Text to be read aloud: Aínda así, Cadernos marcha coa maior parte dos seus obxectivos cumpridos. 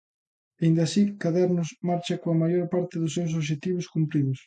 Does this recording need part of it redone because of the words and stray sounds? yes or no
no